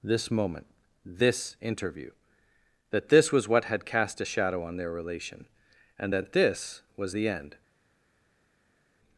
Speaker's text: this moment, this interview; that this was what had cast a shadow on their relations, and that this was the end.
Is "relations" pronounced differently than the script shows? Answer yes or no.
yes